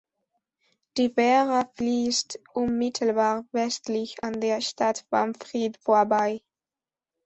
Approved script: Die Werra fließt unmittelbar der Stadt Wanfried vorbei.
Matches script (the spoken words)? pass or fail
fail